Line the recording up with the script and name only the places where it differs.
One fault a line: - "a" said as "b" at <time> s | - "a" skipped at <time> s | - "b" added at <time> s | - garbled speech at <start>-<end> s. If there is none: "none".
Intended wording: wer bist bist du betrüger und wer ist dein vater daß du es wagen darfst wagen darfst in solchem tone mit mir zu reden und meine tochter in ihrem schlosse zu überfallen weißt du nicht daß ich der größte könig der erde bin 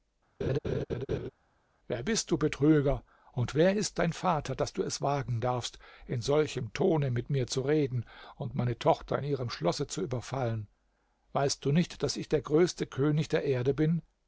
- "bist" skipped at 2.3 s
- "wagen darfst" skipped at 5.8 s